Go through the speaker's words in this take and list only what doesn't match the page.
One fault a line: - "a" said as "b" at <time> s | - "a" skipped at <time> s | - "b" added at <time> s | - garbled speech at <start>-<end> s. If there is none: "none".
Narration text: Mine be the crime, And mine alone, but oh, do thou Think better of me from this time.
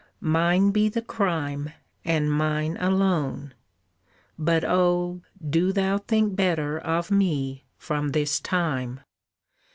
none